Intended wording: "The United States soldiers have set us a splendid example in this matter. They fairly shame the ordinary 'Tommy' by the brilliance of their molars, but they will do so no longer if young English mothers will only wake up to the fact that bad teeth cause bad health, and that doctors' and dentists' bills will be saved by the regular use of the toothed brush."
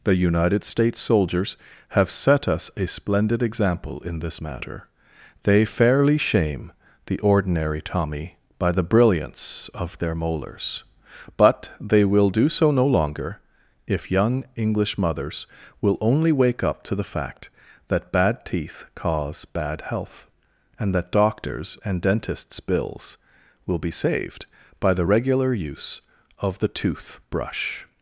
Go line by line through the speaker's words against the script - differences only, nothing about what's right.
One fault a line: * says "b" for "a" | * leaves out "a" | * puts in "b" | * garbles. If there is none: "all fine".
* says "tooth" for "toothed"